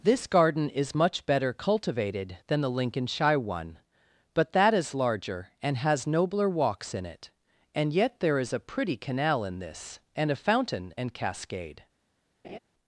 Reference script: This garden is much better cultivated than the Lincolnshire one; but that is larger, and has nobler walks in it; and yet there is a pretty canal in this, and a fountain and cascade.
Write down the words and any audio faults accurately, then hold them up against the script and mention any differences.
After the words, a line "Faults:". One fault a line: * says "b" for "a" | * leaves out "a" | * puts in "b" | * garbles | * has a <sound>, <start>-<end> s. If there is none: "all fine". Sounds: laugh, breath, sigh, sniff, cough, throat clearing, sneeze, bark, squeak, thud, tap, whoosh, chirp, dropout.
This garden is much better cultivated than the Lincolnshire one; but that is larger, and has nobler walks in it; and yet there is a pretty canal in this, and a fountain and cascade.
Faults:
* has a laugh, 12.4-12.6 s